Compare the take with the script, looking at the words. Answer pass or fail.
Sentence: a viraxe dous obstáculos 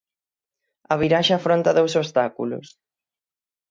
fail